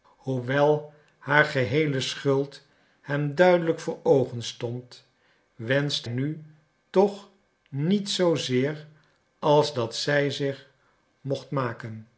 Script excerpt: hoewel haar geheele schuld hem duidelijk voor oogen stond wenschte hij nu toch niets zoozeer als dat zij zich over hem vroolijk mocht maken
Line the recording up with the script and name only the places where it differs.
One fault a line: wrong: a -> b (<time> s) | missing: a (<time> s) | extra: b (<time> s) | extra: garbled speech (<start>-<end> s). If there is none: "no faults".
missing: hij (6.1 s)
missing: over hem vroolijk (10.7 s)